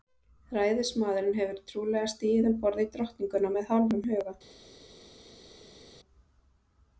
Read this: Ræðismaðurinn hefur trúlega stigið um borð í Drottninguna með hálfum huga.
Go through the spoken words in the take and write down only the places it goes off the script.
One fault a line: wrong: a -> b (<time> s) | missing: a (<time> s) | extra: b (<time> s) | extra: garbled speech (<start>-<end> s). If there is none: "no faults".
no faults